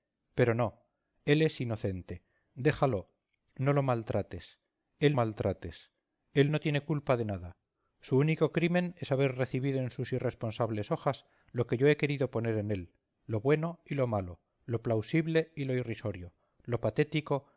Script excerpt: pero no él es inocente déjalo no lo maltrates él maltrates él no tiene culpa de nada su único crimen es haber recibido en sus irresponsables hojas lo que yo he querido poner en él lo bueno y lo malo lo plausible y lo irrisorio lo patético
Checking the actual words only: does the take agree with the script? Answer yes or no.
yes